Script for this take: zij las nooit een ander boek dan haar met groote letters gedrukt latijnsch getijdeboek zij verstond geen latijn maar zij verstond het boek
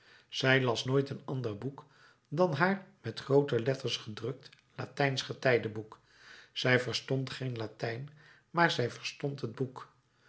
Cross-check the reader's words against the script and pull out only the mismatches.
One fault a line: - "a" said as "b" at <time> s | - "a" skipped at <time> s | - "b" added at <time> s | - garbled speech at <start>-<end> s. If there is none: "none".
none